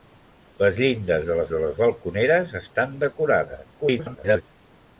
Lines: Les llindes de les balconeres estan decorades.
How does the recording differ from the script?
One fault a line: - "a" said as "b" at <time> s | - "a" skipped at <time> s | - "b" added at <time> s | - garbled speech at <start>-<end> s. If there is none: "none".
- "de les" added at 1.5 s
- garbled speech at 3.7-4.4 s